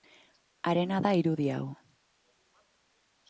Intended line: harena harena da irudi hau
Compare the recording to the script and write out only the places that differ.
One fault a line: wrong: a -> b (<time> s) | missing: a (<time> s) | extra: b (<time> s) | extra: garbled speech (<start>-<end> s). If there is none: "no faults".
missing: harena (1.0 s)